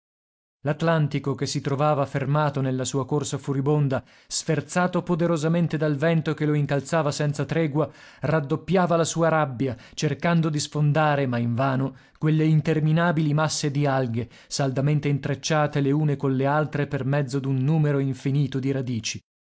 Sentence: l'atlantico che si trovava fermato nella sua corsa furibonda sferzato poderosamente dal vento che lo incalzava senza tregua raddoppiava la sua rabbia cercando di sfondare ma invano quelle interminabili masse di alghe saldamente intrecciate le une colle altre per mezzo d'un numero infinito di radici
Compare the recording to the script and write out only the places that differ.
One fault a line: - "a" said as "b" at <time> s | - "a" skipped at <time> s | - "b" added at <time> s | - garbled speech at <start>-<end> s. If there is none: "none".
none